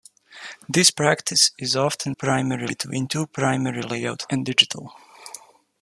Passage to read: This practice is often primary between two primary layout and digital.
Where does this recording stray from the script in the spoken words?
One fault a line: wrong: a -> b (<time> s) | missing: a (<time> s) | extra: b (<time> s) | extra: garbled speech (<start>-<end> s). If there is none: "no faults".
no faults